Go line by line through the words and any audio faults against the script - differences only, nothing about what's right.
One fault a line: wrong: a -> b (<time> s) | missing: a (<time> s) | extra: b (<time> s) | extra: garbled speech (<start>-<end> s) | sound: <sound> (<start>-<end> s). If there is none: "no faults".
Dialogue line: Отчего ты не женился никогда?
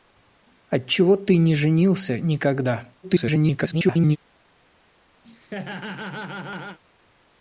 extra: garbled speech (3.0-4.2 s)
sound: laugh (5.2-6.8 s)